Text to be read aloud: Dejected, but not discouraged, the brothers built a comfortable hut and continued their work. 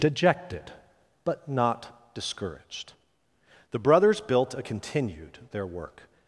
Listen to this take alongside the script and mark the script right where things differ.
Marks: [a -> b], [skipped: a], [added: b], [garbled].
Dejected, but not discouraged, the brothers built a [skipped: comfortable hut and] continued their work.